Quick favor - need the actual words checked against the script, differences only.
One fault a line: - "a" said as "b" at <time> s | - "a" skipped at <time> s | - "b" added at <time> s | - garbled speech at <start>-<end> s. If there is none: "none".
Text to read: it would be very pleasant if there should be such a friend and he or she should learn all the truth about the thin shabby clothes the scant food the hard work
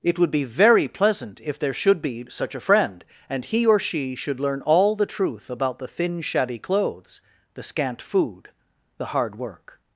none